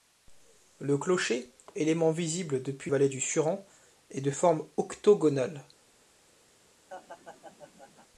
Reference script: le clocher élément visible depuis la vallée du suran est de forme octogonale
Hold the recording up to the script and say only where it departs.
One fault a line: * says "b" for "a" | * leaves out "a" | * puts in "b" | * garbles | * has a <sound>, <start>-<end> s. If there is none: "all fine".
* leaves out "la"
* has a laugh, 6.9-8.1 s